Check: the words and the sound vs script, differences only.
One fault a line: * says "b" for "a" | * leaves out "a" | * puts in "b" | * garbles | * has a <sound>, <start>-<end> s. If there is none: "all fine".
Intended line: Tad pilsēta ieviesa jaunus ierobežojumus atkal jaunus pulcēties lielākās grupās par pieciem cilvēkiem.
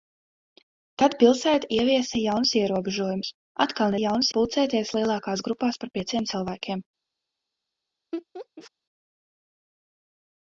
* has a laugh, 8.1-8.7 s